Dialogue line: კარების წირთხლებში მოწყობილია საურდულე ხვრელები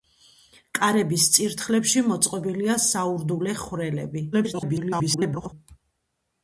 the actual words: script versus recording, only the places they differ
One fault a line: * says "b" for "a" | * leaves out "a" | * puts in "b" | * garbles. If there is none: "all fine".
* garbles